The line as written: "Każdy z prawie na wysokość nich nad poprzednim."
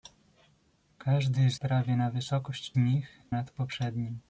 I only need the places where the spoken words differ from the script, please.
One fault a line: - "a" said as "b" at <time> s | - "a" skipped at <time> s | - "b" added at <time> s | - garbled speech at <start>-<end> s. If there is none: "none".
none